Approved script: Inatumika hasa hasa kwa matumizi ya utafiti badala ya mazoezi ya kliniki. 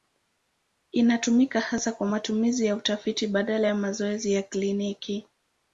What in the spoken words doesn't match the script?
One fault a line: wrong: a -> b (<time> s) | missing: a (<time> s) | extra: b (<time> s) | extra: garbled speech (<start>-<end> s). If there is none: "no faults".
missing: hasa (1.9 s)